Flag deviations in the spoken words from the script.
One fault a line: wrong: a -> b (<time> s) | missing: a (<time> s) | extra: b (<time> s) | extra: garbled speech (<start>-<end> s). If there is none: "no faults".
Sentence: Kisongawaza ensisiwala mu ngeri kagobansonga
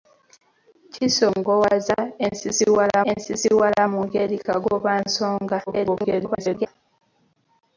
extra: ensisiwala (3.1 s)
extra: garbled speech (5.7-6.7 s)